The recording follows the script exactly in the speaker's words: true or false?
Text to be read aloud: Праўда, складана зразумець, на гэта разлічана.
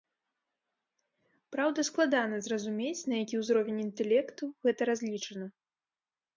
false